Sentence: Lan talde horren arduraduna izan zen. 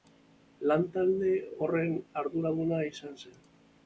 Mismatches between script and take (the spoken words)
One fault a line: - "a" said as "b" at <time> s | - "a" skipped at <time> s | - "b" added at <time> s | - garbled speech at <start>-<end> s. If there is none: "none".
none